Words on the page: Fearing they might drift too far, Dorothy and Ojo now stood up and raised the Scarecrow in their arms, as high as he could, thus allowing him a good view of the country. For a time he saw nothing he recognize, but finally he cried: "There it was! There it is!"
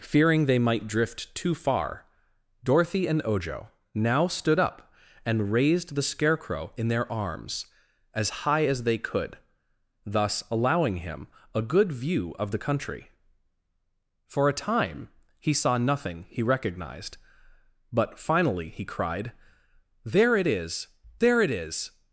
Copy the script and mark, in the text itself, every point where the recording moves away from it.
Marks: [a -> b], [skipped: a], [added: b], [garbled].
Fearing they might drift too far, Dorothy and Ojo now stood up and raised the Scarecrow in their arms, as high as [he -> they] could, thus allowing him a good view of the country. For a time he saw nothing he [recognize, -> recognized] but finally he cried: "There it [was! -> is] There it is!"